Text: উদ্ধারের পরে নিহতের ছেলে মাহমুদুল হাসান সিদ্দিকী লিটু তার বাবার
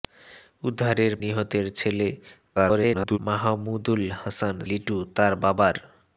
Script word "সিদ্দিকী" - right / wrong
wrong